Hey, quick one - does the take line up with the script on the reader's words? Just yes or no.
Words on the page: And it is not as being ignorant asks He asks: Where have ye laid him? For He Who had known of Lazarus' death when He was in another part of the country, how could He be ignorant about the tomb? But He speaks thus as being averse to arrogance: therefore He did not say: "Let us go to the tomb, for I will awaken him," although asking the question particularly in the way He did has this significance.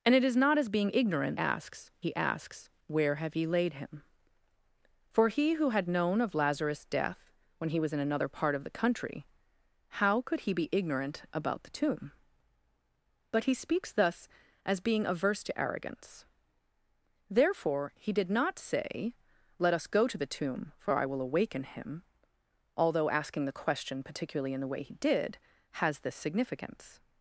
yes